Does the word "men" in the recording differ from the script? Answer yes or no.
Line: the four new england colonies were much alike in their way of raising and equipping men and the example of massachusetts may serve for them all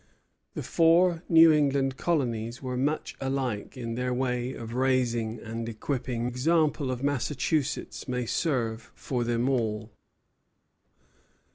yes